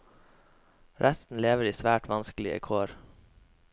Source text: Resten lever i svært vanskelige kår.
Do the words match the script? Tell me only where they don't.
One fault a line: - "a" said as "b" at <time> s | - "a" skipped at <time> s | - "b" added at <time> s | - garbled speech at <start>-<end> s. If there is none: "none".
none